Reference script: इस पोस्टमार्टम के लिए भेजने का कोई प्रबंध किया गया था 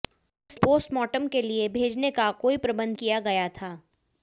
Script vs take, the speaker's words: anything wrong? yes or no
no